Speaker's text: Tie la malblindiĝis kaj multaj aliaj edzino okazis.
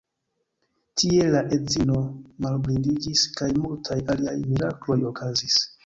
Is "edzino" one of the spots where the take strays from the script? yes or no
yes